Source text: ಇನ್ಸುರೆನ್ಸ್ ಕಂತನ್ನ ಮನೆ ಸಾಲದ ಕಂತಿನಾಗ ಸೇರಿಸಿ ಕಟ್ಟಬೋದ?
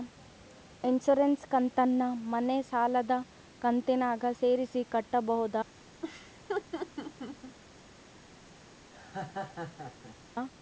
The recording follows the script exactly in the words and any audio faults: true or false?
false